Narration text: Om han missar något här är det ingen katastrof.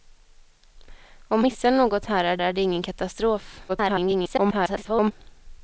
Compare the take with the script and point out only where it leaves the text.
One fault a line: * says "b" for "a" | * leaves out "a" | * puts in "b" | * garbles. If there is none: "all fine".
* leaves out "han"
* puts in "är"
* garbles